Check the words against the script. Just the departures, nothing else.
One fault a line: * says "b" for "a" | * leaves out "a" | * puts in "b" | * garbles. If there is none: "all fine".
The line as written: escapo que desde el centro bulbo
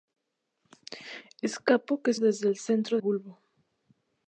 all fine